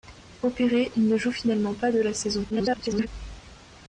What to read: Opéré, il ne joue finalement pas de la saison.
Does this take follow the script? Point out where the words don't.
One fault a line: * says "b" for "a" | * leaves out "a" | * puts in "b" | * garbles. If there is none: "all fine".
* garbles